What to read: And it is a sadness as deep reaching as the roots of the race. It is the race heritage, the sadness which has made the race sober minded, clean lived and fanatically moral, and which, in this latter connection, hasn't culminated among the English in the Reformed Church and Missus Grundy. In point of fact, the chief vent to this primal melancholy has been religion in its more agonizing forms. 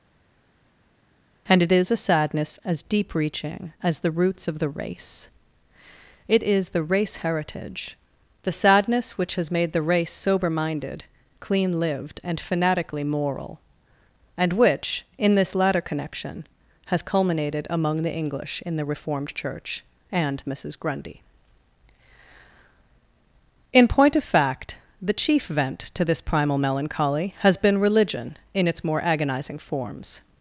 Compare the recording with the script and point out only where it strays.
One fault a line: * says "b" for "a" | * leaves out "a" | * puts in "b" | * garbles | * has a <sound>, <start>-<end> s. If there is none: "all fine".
* says "has" for "hasn't"